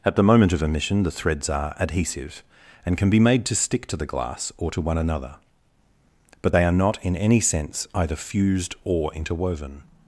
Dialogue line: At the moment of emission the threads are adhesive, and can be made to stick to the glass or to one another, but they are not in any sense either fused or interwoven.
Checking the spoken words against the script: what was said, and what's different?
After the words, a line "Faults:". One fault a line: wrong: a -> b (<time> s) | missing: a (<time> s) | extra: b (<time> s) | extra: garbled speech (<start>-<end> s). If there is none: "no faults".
At the moment of emission the threads are adhesive, and can be made to stick to the glass or to one another, but they are not in any sense either fused or interwoven.
Faults:
no faults